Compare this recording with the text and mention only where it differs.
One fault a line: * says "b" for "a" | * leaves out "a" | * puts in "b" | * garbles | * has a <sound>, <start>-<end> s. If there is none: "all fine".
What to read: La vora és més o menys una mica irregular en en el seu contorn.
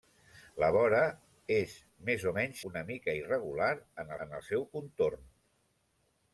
all fine